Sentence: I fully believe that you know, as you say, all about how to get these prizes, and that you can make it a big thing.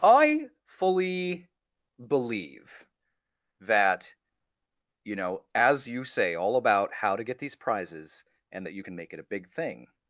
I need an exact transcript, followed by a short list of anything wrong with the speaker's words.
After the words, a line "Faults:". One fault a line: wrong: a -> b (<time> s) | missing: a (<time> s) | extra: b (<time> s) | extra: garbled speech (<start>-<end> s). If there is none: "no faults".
I fully believe that you know, as you say, all about how to get these prizes, and that you can make it a big thing.
Faults:
no faults